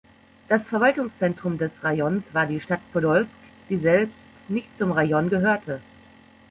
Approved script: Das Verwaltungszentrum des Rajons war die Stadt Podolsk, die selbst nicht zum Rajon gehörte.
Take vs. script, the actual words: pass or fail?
pass